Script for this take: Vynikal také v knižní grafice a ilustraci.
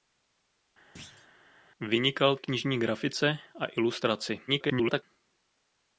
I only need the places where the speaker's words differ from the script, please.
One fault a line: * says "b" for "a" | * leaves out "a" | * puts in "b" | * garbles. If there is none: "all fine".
* leaves out "také"
* garbles